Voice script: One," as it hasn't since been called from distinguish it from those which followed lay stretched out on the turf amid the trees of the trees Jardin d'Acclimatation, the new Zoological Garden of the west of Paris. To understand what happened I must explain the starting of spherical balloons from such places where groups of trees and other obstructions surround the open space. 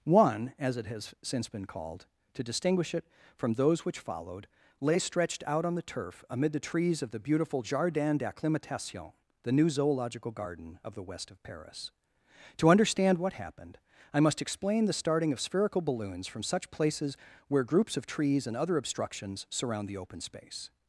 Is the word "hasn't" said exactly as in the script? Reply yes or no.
no